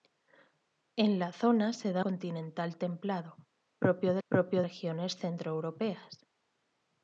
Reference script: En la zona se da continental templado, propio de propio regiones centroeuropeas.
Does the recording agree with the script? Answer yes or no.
yes